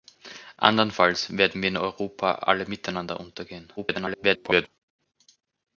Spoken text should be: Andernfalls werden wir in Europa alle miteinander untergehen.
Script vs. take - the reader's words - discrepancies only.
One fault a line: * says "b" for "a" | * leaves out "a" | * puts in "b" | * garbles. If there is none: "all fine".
* garbles